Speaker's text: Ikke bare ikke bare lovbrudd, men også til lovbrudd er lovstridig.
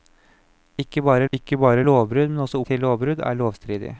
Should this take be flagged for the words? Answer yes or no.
no